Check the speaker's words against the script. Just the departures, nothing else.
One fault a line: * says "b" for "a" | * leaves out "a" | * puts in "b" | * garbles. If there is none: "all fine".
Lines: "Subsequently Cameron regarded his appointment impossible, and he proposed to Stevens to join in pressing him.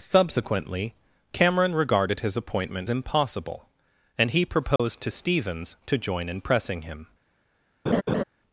all fine